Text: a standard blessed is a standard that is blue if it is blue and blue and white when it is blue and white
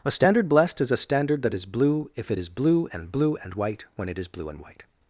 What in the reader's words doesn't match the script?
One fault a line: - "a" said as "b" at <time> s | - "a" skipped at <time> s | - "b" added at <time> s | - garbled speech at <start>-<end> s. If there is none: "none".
none